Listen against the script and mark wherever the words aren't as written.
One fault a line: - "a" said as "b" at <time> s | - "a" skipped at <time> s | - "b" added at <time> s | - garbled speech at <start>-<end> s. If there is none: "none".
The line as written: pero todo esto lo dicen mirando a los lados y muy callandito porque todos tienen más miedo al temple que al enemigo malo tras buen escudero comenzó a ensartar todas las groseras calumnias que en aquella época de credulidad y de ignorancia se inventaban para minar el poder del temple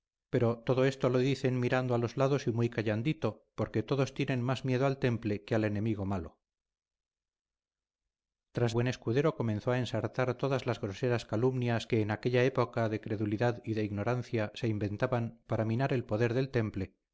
none